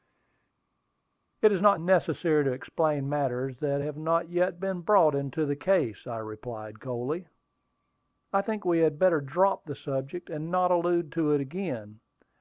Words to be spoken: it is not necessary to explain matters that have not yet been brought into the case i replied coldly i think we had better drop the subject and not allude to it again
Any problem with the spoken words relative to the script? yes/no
no